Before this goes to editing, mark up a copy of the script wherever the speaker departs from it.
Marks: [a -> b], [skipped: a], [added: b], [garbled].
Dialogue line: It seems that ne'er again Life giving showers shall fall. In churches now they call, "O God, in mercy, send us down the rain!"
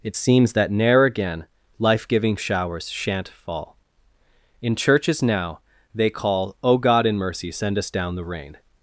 It seems that ne'er again Life giving showers [shall -> shan't] fall. In churches now they call, "O God, in mercy, send us down the rain!"